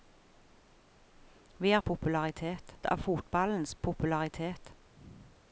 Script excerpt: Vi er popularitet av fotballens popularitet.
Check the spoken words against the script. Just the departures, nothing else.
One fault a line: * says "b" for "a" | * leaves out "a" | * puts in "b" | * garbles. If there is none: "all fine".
all fine